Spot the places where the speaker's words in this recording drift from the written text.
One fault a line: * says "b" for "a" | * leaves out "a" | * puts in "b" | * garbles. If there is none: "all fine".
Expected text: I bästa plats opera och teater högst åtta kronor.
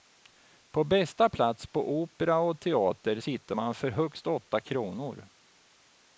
* says "På" for "I"
* puts in "på"
* puts in "sitter man för"